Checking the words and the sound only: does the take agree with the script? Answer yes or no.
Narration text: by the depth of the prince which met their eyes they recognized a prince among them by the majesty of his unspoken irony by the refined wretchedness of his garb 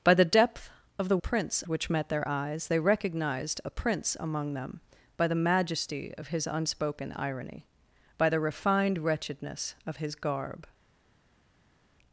yes